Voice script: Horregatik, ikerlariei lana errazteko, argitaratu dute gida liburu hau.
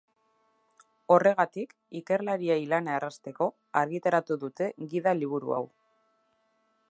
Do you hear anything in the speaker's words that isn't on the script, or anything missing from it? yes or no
no